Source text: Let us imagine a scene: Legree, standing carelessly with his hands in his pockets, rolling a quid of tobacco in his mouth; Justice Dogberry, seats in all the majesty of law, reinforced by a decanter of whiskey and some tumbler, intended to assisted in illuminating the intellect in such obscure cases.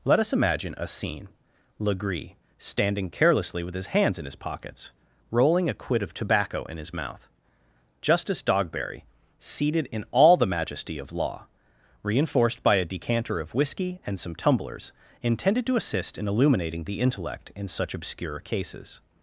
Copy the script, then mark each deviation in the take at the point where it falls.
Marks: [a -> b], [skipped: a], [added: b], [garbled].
Let us imagine a scene: Legree, standing carelessly with his hands in his pockets, rolling a quid of tobacco in his mouth; Justice Dogberry, [seats -> seated] in all the majesty of law, reinforced by a decanter of whiskey and some [tumbler, -> tumblers] intended to [assisted -> assist] in illuminating the intellect in such obscure cases.